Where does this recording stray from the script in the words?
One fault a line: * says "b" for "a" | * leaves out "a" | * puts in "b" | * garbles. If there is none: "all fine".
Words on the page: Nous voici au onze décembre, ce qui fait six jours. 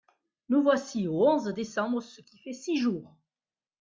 all fine